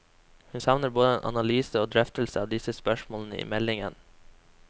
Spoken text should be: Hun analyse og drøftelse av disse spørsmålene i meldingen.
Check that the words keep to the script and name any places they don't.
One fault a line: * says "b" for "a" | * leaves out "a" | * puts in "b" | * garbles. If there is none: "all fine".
* puts in "savner både en"